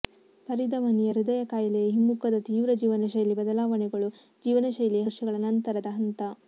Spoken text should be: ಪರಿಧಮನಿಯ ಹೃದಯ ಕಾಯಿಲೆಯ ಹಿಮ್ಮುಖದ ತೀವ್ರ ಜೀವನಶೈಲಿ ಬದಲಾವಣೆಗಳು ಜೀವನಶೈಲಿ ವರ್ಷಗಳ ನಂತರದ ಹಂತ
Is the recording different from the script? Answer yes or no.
no